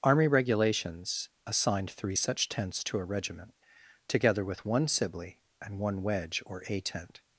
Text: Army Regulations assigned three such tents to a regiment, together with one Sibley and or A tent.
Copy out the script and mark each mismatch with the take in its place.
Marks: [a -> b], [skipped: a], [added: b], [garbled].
Army Regulations assigned three such tents to a regiment, together with one Sibley and [added: one Wedge] or A tent.